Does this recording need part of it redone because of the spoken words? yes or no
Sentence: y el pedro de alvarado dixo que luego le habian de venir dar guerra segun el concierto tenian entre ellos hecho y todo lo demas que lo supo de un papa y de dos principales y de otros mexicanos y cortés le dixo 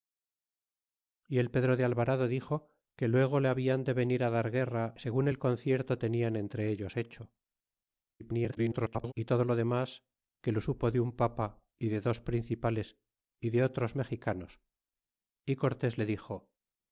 yes